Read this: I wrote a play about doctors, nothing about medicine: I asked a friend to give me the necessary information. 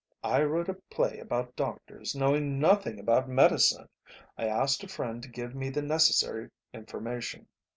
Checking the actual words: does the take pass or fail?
fail